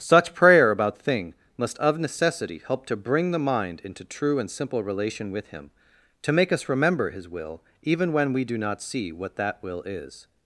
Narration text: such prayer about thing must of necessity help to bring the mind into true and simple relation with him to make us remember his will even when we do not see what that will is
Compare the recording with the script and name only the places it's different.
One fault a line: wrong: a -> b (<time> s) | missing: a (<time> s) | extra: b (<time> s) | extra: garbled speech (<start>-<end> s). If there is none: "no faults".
no faults